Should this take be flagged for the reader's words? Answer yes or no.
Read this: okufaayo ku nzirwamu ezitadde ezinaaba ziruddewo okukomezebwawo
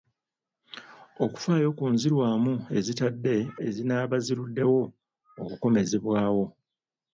no